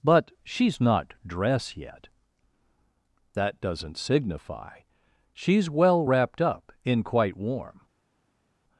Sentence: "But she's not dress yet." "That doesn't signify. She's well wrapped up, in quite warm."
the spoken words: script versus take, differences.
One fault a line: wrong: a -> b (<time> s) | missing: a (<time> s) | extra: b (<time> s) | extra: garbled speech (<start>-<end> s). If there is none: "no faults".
no faults